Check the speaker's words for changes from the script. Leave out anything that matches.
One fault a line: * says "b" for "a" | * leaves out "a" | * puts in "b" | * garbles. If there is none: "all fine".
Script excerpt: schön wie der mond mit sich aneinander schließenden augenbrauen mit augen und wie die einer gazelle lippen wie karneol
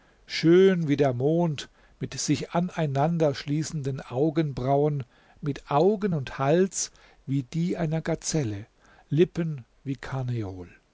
* puts in "hals"